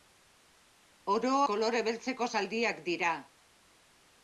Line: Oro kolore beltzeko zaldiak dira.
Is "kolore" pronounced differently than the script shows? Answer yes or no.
no